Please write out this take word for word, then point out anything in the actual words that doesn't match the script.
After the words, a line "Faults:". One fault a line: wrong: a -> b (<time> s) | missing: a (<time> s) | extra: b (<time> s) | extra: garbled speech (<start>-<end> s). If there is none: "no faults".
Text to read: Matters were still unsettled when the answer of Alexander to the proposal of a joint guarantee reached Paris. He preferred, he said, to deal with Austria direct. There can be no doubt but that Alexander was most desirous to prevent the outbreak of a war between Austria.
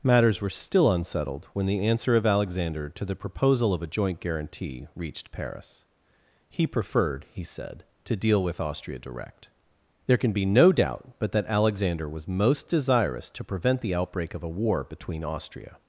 Matters were still unsettled when the answer of Alexander to the proposal of a joint guarantee reached Paris. He preferred, he said, to deal with Austria direct. There can be no doubt but that Alexander was most desirous to prevent the outbreak of a war between Austria.
Faults:
no faults